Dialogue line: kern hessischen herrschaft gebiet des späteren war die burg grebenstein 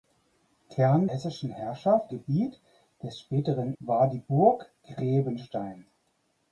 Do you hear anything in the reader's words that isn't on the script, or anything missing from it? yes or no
no